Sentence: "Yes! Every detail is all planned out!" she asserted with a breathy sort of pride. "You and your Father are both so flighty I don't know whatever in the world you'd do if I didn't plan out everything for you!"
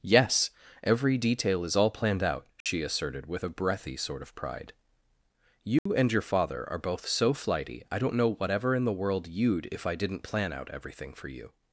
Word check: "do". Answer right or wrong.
wrong